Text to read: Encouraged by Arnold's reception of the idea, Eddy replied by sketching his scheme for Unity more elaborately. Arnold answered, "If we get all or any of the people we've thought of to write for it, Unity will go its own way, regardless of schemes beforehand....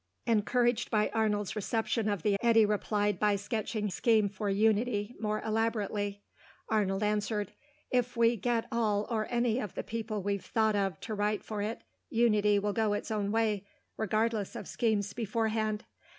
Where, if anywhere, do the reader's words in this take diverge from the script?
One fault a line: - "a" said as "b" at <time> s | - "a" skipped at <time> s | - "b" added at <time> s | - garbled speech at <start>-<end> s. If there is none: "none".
- "idea" skipped at 2.3 s
- "his" skipped at 3.9 s